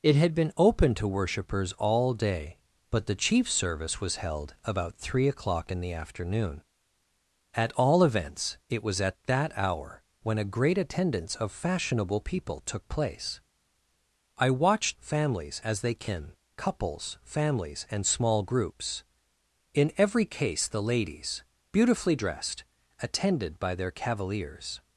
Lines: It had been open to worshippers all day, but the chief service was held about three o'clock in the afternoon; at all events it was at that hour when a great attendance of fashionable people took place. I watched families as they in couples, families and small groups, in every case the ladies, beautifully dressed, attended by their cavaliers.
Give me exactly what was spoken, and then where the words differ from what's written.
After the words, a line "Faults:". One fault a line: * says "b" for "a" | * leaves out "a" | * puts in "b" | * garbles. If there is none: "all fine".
It had been open to worshippers all day, but the chief service was held about three o'clock in the afternoon; at all events it was at that hour when a great attendance of fashionable people took place. I watched families as they in couples, families and small groups, in every case the ladies, beautifully dressed, attended by their cavaliers.
Faults:
all fine